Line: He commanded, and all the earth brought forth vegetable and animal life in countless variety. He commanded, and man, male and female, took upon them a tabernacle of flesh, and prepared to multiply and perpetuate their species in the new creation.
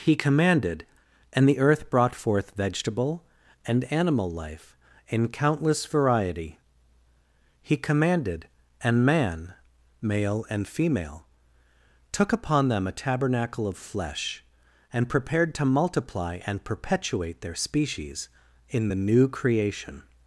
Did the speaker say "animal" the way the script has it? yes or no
yes